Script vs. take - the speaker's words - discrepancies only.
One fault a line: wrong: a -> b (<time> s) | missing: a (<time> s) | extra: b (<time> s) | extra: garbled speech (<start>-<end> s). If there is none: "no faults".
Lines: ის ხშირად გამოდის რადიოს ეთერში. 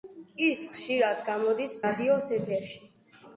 no faults